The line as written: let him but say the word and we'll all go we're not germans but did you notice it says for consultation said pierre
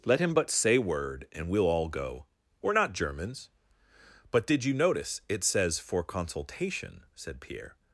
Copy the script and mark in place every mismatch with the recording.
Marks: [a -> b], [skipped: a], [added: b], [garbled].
let him but say [skipped: the] word and we'll all go we're not germans but did you notice it says for consultation said pierre